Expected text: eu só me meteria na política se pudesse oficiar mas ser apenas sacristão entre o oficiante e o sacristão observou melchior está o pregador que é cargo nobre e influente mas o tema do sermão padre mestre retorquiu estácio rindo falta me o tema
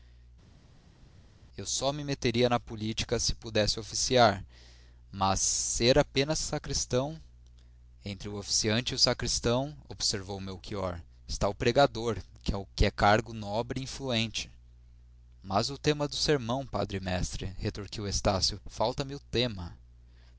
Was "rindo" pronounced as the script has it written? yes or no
no